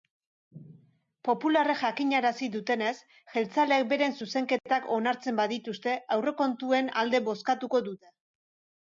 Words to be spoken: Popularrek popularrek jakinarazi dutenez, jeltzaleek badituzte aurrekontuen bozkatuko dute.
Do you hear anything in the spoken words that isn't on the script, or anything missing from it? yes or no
yes